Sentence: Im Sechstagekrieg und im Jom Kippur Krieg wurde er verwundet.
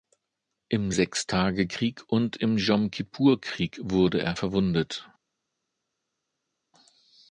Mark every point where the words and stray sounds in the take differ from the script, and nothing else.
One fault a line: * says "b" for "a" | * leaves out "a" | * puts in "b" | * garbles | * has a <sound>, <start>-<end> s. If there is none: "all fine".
all fine